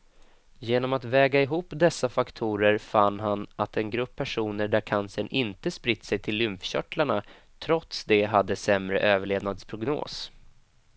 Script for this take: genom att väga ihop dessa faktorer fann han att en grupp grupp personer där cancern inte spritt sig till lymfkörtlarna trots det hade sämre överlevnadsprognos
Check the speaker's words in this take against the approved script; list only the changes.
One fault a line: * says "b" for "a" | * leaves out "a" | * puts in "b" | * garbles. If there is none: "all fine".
* leaves out "grupp"